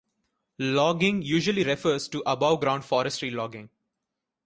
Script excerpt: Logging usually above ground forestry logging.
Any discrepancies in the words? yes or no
yes